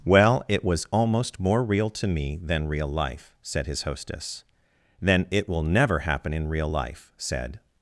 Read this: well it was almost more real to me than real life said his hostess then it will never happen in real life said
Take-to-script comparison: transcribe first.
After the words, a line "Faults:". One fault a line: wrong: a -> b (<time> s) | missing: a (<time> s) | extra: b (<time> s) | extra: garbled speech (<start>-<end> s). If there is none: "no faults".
well it was almost more real to me than real life said his hostess then it will never happen in real life said
Faults:
no faults